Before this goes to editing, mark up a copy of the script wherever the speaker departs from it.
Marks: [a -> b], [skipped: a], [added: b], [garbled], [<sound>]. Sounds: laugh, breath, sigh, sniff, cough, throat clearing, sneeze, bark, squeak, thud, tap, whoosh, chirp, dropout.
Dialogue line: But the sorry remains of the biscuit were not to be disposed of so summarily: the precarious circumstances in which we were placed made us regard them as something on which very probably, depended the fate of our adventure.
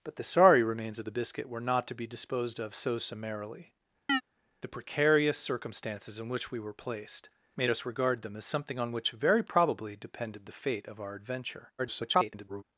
But the sorry remains of the biscuit were not to be disposed of so summarily: [chirp] the precarious circumstances in which we were placed made us regard them as something on which very probably, depended the fate of our adventure. [garbled]